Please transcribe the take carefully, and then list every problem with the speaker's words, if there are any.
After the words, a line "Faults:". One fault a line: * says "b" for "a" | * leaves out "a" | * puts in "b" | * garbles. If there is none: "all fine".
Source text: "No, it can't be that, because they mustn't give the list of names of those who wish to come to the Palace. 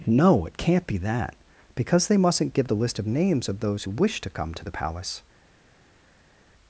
"No, it can't be that, because they mustn't give the list of names of those who wish to come to the Palace.
Faults:
all fine